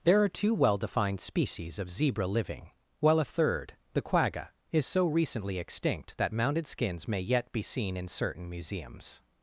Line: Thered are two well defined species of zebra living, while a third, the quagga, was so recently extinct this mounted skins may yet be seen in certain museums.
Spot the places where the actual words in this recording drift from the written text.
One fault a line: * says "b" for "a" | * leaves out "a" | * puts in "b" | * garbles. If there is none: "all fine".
* says "There" for "Thered"
* says "is" for "was"
* says "that" for "this"